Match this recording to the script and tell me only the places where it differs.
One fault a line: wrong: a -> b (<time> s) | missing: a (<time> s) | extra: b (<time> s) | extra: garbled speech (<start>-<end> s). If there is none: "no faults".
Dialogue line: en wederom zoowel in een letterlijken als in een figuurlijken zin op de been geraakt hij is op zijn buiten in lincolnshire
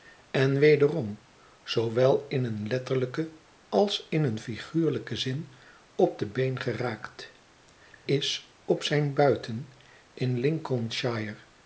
missing: hij (7.3 s)